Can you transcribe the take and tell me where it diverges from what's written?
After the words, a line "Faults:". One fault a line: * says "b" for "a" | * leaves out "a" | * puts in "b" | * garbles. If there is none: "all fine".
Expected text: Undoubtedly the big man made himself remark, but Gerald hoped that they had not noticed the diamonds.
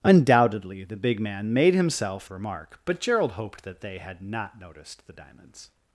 Undoubtedly the big man made himself remark, but Gerald hoped that they had not noticed the diamonds.
Faults:
all fine